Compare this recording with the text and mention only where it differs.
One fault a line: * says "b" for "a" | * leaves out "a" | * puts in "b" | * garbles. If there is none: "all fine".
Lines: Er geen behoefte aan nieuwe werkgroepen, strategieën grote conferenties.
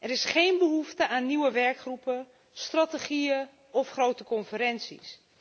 * puts in "is"
* puts in "of"